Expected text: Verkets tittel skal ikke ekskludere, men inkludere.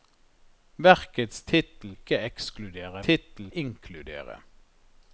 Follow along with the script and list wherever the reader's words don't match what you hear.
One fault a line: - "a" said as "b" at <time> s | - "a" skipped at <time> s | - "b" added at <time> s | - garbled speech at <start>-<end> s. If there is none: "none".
- "skal" skipped at 1.9 s
- "men" said as "tittel" at 3.1 s